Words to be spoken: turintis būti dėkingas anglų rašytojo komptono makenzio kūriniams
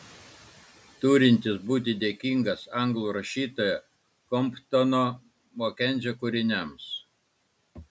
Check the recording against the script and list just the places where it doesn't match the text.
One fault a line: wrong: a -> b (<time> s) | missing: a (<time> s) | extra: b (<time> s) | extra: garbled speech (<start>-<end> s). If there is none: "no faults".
no faults